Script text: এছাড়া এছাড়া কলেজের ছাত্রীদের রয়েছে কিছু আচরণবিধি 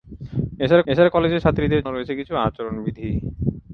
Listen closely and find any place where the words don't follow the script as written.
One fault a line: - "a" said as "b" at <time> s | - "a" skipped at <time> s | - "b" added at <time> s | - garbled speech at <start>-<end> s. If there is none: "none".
none